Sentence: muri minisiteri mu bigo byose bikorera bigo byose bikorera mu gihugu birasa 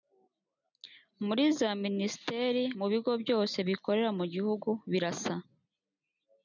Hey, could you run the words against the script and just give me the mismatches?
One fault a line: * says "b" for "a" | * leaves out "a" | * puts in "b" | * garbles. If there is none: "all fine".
* puts in "za"
* leaves out "bigo byose bikorera"